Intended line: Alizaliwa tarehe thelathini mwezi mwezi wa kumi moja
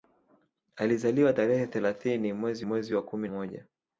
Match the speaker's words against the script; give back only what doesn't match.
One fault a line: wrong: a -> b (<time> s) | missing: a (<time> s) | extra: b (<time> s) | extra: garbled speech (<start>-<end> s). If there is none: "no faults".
no faults